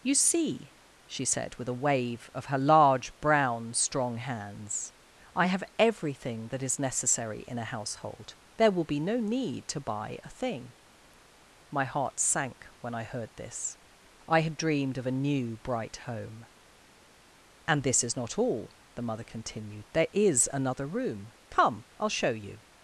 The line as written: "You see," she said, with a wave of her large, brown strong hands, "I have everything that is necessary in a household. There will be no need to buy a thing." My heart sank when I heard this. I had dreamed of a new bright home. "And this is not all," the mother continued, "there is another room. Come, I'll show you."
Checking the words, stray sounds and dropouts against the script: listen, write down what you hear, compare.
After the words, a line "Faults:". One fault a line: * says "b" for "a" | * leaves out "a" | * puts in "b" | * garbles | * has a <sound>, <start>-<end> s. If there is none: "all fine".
"You see," she said, with a wave of her large, brown strong hands, "I have everything that is necessary in a household. There will be no need to buy a thing." My heart sank when I heard this. I had dreamed of a new bright home. "And this is not all," the mother continued, "there is another room. Come, I'll show you."
Faults:
all fine